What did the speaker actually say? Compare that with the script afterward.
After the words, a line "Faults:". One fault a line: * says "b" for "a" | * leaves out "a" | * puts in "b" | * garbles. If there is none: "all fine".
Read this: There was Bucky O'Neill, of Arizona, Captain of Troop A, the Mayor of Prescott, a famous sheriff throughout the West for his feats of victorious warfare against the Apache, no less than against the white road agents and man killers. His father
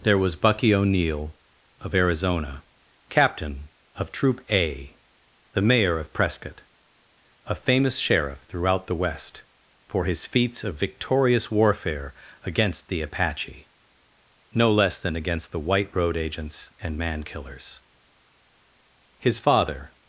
There was Bucky O'Neill, of Arizona, Captain of Troop A, the Mayor of Prescott, a famous sheriff throughout the West for his feats of victorious warfare against the Apache, no less than against the white road agents and man killers. His father
Faults:
all fine